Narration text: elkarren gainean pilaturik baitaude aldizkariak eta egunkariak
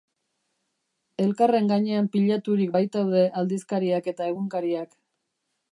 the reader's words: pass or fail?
pass